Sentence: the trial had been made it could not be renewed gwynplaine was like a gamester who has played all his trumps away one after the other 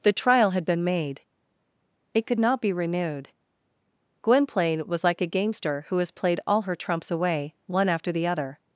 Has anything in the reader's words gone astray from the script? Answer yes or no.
yes